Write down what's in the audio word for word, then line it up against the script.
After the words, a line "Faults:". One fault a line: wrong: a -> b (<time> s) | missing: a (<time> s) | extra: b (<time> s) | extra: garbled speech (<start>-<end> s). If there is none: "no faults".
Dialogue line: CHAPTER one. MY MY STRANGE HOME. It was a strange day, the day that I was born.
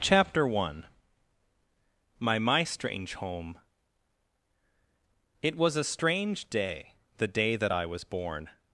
CHAPTER one. MY MY STRANGE HOME. It was a strange day, the day that I was born.
Faults:
no faults